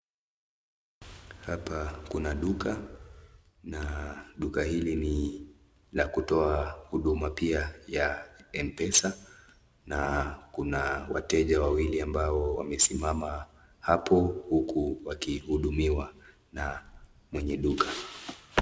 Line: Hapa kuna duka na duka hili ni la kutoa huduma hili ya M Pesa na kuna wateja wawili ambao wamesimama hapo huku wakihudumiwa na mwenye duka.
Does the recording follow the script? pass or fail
fail